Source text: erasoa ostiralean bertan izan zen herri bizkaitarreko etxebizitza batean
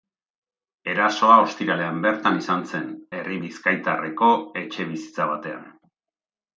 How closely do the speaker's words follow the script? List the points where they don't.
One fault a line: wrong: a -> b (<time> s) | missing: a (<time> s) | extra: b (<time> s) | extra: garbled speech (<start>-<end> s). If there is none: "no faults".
no faults